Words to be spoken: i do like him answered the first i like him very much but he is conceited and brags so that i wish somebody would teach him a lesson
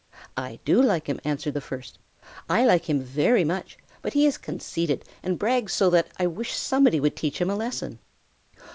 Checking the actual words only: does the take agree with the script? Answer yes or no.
yes